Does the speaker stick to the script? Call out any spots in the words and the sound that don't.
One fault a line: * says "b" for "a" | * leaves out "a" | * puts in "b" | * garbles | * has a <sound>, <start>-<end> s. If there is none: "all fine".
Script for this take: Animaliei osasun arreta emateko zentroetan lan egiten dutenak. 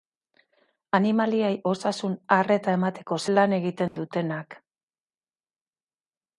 * leaves out "zentroetan"
* has a dropout, 3.9-4.0 s